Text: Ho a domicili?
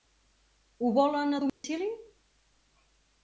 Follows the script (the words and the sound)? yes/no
no